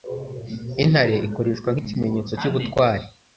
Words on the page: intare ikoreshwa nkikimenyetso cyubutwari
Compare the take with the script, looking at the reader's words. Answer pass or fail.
pass